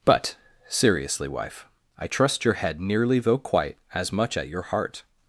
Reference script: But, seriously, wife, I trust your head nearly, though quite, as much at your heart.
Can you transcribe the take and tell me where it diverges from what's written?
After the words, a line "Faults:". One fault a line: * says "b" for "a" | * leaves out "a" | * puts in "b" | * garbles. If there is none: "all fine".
But, seriously, wife, I trust your head nearly, though quite, as much at your heart.
Faults:
all fine